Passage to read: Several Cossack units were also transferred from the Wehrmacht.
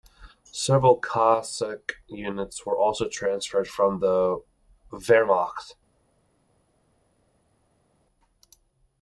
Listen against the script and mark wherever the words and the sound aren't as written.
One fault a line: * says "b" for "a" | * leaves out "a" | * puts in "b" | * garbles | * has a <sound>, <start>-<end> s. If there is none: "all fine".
all fine